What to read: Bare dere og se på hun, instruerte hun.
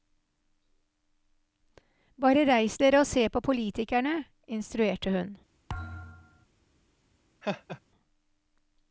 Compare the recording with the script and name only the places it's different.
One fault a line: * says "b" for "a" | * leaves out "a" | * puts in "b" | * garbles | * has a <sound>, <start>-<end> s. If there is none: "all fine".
* puts in "reis"
* says "politikerne" for "hun"
* has a thud, 5.7-6.5 s
* has a laugh, 7.4-7.8 s